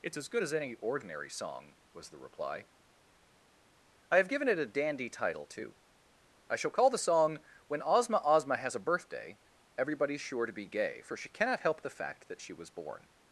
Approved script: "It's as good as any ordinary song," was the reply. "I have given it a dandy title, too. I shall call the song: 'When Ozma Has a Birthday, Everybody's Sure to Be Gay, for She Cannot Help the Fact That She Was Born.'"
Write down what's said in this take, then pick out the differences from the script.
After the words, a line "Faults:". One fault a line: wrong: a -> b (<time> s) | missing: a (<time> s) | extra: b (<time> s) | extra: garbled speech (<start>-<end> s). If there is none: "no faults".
"It's as good as any ordinary song," was the reply. "I have given it a dandy title, too. I shall call the song: 'When Ozma Ozma Has a Birthday, Everybody's Sure to Be Gay, for She Cannot Help the Fact That She Was Born.'"
Faults:
extra: Ozma (8.2 s)